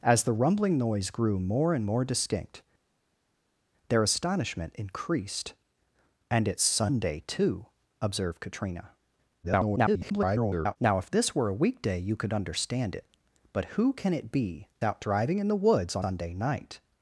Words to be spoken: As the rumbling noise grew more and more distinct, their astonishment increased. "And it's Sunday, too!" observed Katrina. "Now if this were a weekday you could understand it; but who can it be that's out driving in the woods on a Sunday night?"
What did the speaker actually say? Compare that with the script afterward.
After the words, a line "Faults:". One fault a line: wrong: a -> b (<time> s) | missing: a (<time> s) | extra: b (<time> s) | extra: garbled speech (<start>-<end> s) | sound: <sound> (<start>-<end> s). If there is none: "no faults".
As the rumbling noise grew more and more distinct, their astonishment increased. "And it's Sunday, too!" observed Katrina. [garbled] "Now if this were a weekday you could understand it; but who can it be out driving in the woods on Sunday night?"
Faults:
extra: garbled speech (9.4-10.8 s)
missing: that's (14.7 s)
missing: a (16.1 s)